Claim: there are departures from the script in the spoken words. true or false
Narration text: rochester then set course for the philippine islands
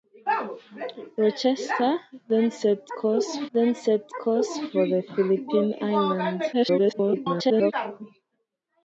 true